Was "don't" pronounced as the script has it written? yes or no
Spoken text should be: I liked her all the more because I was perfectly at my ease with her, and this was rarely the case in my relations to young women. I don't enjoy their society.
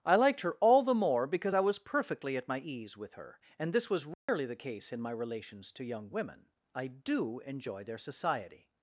no